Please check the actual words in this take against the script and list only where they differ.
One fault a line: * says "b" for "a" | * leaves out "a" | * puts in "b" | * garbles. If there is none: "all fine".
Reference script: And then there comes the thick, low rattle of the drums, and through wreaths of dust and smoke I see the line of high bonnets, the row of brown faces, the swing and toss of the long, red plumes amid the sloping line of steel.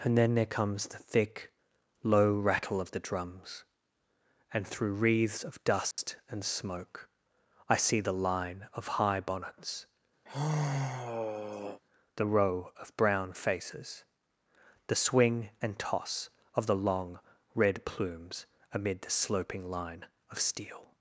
all fine